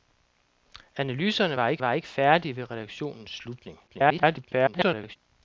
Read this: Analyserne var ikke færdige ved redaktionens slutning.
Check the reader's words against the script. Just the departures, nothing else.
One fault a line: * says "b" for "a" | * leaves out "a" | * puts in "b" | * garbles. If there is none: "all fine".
* puts in "var ikke"
* garbles